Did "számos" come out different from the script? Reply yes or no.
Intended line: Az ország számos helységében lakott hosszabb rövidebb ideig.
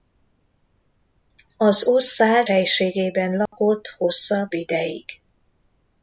yes